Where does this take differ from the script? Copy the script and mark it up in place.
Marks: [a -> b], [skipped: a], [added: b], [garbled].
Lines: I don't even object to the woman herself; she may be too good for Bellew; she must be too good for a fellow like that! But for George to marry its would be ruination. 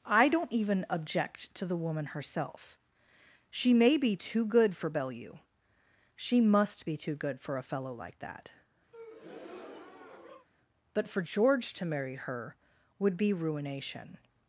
I don't even object to the woman herself; she may be too good for Bellew; she must be too good for a fellow like that! But for George to marry [its -> her] would be ruination.